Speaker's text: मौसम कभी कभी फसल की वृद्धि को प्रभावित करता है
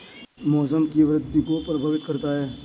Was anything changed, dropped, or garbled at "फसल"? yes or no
yes